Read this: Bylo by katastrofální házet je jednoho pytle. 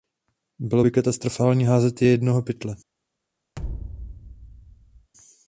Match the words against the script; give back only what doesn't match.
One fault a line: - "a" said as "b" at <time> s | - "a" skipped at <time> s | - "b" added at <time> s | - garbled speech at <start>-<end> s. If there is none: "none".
none